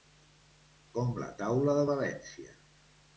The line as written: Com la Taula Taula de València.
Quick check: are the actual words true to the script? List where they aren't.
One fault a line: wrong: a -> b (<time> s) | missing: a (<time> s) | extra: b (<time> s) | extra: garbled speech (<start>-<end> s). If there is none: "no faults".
missing: Taula (1.8 s)